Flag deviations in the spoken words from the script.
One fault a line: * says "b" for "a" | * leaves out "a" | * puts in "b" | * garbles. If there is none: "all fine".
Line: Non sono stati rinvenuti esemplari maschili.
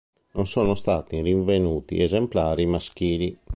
all fine